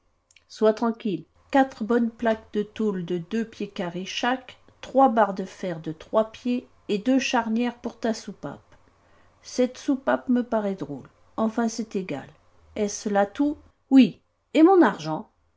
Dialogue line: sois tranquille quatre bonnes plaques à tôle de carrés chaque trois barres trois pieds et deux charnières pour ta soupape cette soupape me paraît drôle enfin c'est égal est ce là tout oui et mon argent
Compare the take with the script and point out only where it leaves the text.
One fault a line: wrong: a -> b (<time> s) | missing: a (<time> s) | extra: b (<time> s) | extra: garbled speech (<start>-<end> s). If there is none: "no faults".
wrong: à -> de (2.5 s)
extra: deux pieds (3.2 s)
extra: de fer de (5.3 s)